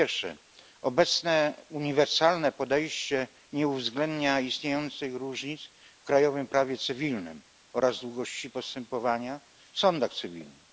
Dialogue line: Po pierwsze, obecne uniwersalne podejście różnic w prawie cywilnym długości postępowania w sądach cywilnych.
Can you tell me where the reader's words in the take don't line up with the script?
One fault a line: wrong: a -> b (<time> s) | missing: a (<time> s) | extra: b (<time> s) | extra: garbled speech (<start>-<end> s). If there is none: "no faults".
extra: nie uwzględnia istniejących (3.5 s)
extra: krajowym (6.0 s)
extra: oraz (7.7 s)